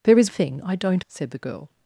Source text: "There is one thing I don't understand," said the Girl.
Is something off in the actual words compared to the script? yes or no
yes